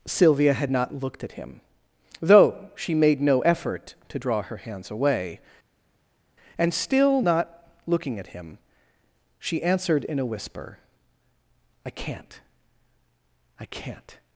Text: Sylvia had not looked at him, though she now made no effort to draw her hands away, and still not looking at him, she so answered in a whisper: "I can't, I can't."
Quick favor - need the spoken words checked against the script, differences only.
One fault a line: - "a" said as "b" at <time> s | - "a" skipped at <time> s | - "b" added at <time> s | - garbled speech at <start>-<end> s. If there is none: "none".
- "now" skipped at 2.9 s
- "so" skipped at 9.6 s